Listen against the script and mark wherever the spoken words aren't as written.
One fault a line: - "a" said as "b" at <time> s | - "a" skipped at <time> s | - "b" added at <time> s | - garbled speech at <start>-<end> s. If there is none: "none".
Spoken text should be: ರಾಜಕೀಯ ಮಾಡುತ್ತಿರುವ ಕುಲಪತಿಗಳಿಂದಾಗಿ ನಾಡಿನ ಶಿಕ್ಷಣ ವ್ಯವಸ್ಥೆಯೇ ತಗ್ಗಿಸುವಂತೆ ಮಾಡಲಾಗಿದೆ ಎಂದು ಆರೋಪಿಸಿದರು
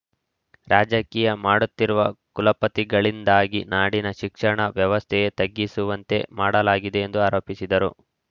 none